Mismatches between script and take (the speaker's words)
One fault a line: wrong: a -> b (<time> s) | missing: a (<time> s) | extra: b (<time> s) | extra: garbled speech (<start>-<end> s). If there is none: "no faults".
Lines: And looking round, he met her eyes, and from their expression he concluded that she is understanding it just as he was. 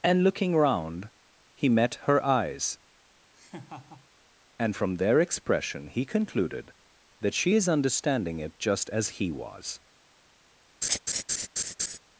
no faults